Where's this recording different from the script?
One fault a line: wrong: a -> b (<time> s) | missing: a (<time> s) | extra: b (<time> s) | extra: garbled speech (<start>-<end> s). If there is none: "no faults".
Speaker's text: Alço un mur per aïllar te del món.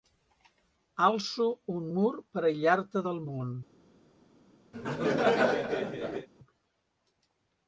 no faults